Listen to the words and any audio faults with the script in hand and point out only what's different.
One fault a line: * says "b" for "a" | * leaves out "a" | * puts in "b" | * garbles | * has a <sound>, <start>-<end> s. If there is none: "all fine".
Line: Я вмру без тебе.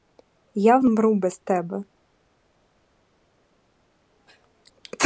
all fine